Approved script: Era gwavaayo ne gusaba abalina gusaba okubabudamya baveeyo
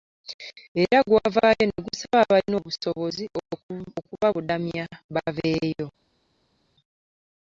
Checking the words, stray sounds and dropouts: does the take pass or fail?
fail